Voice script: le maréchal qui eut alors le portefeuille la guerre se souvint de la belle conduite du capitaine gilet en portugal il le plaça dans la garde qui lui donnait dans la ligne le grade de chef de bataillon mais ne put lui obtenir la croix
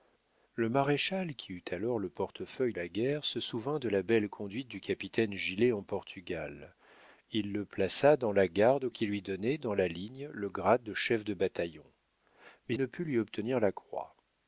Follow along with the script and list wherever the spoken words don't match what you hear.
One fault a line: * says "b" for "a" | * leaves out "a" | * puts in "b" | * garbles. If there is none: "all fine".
all fine